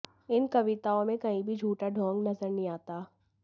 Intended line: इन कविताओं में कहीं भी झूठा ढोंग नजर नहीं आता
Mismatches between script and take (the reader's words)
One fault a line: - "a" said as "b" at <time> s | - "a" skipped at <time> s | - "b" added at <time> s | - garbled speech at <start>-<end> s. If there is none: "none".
none